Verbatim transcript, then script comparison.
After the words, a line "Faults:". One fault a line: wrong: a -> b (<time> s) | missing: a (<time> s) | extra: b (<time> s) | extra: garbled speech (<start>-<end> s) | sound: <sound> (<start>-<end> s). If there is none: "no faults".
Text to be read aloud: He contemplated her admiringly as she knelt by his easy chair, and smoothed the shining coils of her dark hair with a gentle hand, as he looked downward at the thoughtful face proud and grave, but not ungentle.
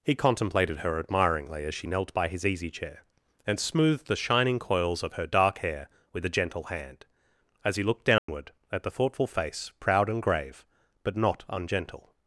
He contemplated her admiringly as she knelt by his easy chair, and smoothed the shining coils of her dark hair with a gentle hand, as he looked downward at the thoughtful face proud and grave, but not ungentle.
Faults:
sound: dropout (8.2-8.3 s)